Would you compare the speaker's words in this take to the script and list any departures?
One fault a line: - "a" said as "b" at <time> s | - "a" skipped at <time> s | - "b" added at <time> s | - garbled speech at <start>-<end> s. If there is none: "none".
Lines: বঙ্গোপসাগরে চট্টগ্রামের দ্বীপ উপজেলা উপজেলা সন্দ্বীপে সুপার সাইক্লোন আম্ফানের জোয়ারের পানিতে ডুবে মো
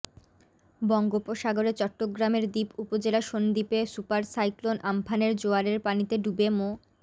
- "উপজেলা" skipped at 3.2 s